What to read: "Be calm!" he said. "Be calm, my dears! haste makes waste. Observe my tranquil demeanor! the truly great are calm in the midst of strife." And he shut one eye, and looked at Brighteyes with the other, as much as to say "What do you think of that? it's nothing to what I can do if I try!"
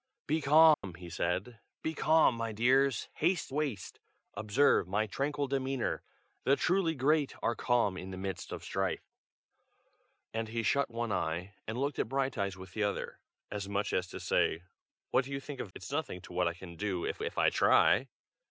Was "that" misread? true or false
true